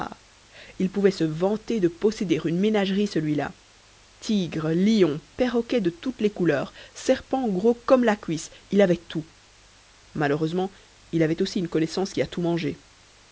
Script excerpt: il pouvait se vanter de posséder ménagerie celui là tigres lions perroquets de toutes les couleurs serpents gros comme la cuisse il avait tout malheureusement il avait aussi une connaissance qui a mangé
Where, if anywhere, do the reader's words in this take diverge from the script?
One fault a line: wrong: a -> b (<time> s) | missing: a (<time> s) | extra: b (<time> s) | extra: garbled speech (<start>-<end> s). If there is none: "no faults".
extra: une (2.5 s)
extra: tout (12.3 s)